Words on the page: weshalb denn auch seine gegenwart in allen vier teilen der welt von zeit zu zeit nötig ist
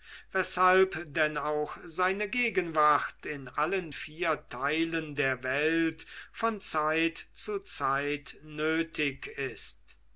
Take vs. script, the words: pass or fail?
pass